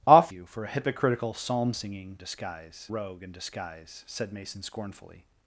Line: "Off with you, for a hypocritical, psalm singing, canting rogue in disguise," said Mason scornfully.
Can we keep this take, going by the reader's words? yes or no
no